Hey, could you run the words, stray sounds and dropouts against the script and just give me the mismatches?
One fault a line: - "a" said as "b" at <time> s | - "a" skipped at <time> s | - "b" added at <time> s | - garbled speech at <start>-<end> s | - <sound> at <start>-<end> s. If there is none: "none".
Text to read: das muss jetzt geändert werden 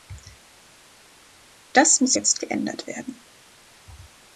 none